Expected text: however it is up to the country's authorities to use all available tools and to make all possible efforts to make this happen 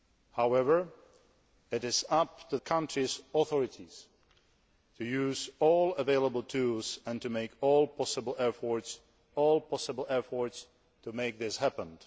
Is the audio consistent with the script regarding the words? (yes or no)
no